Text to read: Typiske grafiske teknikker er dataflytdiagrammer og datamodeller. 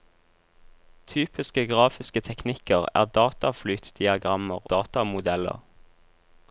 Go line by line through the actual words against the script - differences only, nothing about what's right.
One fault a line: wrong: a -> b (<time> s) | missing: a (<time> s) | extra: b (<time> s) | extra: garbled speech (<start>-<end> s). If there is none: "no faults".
missing: og (4.7 s)